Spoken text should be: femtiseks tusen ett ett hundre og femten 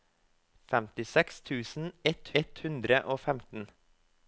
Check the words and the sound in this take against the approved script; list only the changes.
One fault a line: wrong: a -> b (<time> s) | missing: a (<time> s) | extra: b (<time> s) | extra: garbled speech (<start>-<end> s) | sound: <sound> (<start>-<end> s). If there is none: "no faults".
no faults